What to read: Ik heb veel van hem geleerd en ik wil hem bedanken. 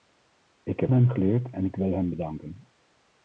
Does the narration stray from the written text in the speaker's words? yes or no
yes